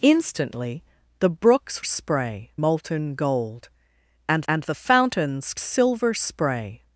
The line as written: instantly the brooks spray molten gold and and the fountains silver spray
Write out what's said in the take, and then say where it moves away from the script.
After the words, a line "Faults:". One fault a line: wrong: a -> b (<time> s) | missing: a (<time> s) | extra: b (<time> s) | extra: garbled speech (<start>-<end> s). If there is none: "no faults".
instantly the brooks spray molten gold and and the fountains silver spray
Faults:
no faults